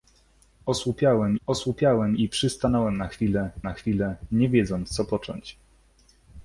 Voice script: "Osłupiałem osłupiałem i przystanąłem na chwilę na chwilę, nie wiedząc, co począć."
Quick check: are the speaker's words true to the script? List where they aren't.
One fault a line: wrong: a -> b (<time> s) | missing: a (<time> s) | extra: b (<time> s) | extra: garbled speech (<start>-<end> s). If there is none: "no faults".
no faults